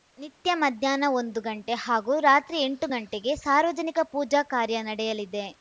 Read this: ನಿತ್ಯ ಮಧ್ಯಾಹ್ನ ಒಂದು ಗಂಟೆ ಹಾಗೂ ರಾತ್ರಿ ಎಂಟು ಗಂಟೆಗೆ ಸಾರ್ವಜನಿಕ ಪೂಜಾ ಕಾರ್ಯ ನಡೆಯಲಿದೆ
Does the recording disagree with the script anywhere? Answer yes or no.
no